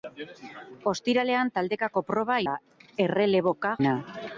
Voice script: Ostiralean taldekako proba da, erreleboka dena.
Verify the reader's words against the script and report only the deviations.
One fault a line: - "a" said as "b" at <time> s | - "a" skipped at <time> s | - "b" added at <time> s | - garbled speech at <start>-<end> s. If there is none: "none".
none